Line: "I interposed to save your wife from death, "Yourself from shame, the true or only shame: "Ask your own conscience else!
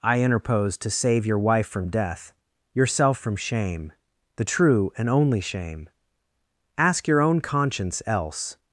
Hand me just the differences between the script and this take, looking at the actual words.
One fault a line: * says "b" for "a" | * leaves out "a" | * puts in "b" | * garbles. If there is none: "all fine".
* says "and" for "or"